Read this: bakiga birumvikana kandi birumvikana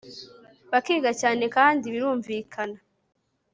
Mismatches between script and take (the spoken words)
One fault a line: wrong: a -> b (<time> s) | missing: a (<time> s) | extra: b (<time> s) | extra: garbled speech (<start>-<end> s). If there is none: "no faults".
wrong: birumvikana -> cyane (1.2 s)